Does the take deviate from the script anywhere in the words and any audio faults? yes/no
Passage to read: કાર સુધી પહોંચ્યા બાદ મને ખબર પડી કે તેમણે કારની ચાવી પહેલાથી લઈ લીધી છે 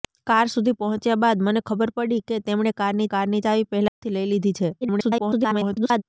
yes